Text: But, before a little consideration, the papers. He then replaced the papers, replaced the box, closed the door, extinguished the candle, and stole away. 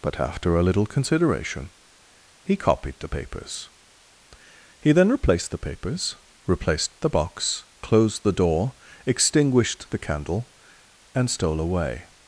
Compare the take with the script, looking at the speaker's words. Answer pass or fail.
fail